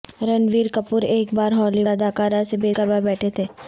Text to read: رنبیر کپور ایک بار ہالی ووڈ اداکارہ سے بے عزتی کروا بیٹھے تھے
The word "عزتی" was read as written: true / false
false